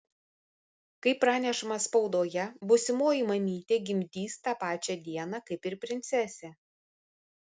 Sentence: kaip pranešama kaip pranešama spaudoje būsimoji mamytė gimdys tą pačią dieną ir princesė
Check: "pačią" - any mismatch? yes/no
no